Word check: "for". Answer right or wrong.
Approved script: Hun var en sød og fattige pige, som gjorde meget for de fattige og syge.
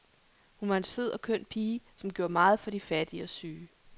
right